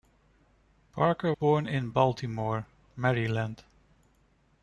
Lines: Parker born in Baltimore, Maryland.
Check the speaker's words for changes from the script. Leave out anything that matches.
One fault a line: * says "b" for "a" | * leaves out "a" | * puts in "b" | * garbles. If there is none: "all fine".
all fine